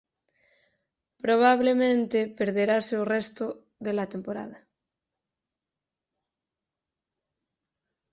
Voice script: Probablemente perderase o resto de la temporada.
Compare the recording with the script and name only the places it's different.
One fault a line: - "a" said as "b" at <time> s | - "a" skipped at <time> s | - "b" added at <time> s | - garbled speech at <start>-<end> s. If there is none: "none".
none